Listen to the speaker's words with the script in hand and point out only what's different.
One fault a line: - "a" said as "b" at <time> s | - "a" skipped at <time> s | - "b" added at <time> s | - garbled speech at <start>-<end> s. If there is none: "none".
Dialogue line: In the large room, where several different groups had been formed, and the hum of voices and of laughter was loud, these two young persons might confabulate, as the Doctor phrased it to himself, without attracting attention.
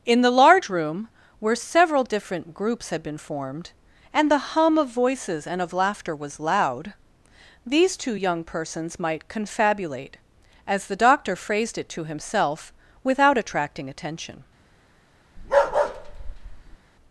none